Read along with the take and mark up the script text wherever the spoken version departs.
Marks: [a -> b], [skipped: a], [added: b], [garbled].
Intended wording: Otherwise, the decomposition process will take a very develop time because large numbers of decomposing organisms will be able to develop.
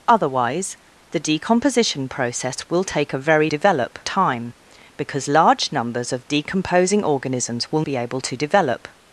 Otherwise, the decomposition process will take a very develop time because large numbers of decomposing organisms will be able to develop.